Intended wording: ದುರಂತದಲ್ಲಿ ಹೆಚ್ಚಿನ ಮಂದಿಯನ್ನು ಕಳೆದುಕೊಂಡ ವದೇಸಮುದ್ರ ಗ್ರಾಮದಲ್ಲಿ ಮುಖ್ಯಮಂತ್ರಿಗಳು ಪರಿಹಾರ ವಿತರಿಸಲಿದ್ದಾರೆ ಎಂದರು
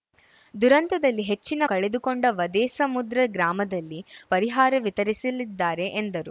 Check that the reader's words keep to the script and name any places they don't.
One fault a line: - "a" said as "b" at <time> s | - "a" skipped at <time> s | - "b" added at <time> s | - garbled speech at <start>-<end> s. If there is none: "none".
- "ಮಂದಿಯನ್ನು" skipped at 1.6 s
- "ಮುಖ್ಯಮಂತ್ರಿಗಳು" skipped at 4.0 s